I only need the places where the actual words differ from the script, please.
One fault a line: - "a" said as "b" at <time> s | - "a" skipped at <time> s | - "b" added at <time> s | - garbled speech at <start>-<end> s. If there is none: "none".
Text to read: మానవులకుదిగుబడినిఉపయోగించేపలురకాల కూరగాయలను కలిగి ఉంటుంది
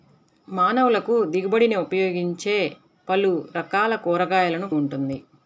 - "కలిగి" skipped at 4.7 s